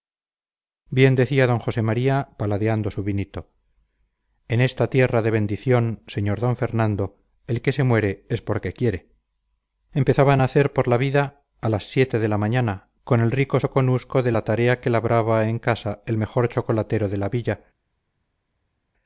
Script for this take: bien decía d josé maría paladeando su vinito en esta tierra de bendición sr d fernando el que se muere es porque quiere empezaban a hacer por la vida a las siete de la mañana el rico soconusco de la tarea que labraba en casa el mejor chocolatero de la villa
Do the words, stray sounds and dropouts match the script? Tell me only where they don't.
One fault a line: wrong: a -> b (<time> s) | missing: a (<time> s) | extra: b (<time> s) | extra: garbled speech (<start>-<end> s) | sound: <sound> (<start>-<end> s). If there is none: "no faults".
extra: con (13.0 s)